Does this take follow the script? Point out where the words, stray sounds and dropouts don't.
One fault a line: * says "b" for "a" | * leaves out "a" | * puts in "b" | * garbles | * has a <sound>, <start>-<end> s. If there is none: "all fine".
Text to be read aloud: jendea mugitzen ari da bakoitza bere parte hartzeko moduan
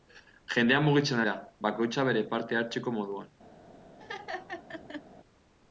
* leaves out "ari"
* has a laugh, 4.0-5.0 s